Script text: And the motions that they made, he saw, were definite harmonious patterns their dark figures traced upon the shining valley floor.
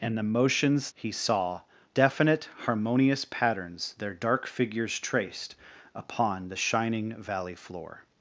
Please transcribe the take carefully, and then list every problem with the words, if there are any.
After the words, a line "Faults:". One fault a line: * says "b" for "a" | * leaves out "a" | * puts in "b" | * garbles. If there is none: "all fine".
And the motions he saw, definite harmonious patterns their dark figures traced upon the shining valley floor.
Faults:
* leaves out "that they made"
* leaves out "were"